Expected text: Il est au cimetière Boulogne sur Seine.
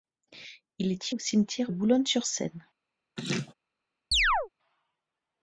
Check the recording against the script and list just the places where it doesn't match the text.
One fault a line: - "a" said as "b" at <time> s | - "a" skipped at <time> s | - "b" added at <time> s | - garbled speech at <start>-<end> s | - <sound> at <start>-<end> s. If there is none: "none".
- laugh at 3.2-3.5 s
- chirp at 4.1-4.5 s